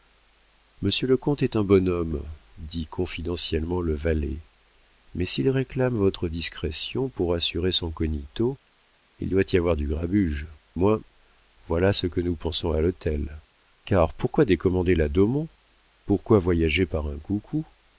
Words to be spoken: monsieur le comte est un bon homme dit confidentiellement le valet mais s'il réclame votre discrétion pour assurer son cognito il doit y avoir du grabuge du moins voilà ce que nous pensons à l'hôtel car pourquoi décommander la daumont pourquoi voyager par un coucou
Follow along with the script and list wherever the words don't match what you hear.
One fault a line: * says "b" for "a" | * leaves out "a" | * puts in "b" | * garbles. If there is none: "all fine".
* leaves out "du"